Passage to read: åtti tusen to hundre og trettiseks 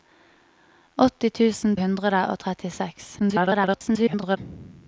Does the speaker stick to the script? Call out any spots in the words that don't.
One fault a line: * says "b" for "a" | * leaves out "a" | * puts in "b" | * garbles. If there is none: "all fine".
* leaves out "to"
* garbles